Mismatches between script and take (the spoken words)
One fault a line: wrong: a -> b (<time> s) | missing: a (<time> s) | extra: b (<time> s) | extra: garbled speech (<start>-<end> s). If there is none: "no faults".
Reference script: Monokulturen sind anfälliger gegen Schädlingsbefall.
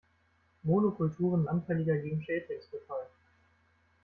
missing: sind (1.4 s)